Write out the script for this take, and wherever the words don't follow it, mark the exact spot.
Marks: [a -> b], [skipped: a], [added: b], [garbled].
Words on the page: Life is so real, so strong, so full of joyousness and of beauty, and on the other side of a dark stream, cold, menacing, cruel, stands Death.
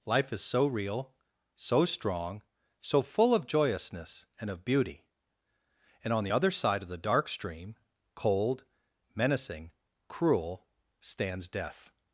Life is so real, so strong, so full of joyousness and of beauty, and on the other side of [a -> the] dark stream, cold, menacing, cruel, stands Death.